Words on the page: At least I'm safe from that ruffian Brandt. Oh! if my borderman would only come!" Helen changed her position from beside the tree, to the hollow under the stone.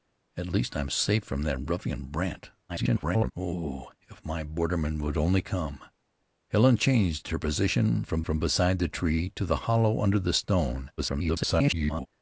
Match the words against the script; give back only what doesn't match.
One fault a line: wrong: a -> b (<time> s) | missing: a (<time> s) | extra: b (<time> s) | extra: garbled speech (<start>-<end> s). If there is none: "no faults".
extra: garbled speech (2.7-3.3 s)
extra: from (8.2 s)
extra: garbled speech (11.0-12.1 s)